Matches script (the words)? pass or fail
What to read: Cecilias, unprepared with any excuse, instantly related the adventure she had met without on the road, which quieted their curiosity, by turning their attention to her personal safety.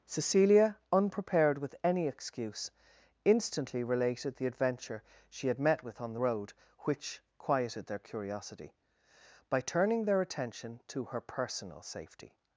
fail